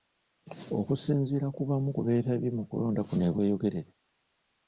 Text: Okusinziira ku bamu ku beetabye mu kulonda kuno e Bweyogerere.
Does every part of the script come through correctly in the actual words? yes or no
yes